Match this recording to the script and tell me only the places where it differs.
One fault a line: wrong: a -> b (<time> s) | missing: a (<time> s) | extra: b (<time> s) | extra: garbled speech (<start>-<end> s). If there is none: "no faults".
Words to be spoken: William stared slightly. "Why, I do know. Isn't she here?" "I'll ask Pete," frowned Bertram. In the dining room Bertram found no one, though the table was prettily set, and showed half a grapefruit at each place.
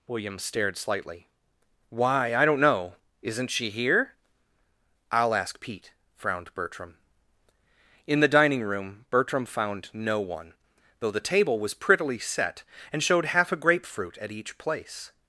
wrong: do -> don't (2.5 s)